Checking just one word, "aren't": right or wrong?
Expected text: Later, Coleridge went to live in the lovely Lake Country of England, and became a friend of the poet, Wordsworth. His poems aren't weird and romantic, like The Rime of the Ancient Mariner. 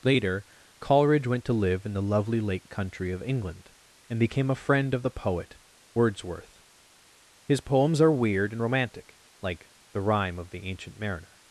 wrong